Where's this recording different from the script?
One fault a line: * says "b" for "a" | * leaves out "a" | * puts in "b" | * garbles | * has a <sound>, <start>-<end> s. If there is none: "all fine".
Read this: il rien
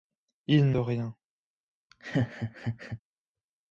* has a laugh, 1.9-3.0 s